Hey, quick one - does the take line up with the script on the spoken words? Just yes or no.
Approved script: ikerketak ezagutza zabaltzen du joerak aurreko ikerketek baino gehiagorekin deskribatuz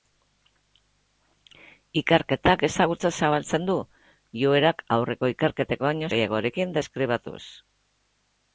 yes